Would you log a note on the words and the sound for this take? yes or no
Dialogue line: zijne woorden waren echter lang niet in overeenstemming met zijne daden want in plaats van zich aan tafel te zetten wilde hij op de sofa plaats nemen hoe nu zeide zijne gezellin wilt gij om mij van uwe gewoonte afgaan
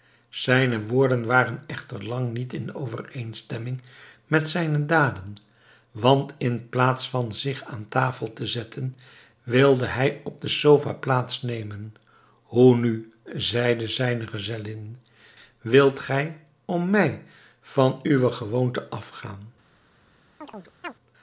yes